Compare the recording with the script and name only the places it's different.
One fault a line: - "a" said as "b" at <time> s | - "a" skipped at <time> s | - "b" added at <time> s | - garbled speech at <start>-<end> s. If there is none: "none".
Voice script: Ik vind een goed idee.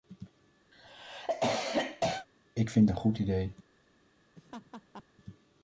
none